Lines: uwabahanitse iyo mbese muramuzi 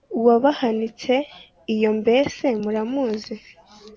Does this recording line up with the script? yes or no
yes